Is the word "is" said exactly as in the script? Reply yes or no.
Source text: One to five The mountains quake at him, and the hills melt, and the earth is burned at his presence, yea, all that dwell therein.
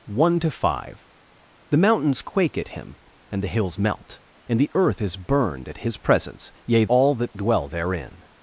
yes